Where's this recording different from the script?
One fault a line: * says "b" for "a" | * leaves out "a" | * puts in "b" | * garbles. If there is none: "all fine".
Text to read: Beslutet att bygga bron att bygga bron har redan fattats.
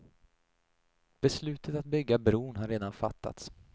* leaves out "att bygga bron"